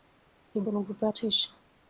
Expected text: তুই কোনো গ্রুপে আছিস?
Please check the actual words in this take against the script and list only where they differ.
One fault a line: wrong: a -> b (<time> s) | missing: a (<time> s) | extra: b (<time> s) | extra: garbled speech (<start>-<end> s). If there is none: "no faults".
no faults